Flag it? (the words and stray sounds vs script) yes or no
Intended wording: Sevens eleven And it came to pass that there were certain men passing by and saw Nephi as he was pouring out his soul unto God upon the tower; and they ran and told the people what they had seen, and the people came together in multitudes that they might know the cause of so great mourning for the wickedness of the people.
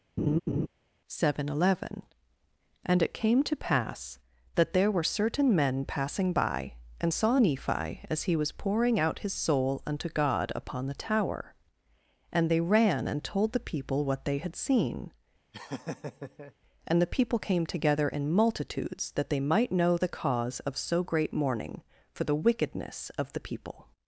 yes